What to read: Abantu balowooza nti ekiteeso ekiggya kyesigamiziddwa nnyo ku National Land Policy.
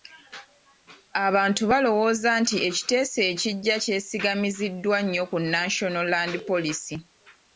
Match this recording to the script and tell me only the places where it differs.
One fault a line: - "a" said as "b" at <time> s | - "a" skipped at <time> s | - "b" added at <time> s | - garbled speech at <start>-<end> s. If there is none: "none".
none